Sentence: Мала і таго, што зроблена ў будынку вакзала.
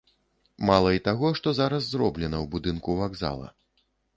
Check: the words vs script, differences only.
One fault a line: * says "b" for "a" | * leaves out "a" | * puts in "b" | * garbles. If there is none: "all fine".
* puts in "зараз"